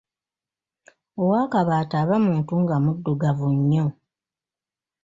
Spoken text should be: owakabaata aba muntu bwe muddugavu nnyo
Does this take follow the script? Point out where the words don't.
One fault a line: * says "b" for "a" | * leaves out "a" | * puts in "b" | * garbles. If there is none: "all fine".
* says "nga" for "bwe"